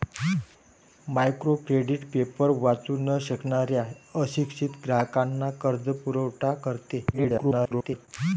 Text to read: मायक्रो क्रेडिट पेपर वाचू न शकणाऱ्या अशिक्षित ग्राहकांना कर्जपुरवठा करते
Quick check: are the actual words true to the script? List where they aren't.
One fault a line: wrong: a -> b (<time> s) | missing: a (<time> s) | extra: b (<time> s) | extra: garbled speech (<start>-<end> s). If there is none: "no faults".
extra: garbled speech (7.1-8.1 s)